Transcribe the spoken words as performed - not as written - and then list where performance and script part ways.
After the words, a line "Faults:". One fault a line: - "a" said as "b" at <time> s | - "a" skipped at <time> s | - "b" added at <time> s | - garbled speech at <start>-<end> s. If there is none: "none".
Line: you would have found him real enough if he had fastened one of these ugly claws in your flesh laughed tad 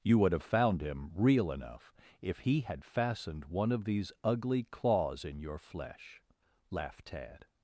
you would have found him real enough if he had fastened one of these ugly claws in your flesh laughed tad
Faults:
none